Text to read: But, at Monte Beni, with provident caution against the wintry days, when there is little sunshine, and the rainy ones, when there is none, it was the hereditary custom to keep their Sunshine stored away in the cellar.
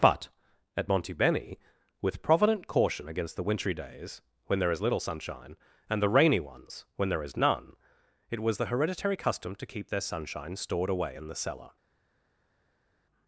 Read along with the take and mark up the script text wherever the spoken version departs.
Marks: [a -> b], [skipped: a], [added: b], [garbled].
But, at Monte Beni, with provident caution against the wintry days, when there is little sunshine, and the rainy ones, when there is none, it was the hereditary custom to keep their Sunshine stored away in the cellar.